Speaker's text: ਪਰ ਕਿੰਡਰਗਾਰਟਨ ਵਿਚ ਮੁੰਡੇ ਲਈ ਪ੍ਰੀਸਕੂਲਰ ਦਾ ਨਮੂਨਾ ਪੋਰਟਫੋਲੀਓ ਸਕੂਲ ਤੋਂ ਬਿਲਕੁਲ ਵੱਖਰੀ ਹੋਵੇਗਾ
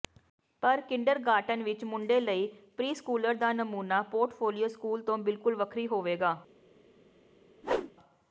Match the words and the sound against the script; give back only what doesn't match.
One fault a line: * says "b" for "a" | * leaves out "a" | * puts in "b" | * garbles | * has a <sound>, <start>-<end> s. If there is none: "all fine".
* has a whoosh, 7.6-7.9 s